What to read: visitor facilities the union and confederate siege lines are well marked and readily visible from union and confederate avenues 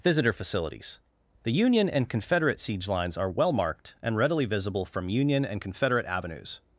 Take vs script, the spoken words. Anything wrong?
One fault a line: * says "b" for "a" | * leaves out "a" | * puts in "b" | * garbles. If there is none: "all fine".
all fine